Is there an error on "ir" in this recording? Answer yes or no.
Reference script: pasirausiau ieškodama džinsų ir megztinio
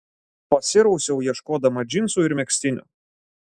no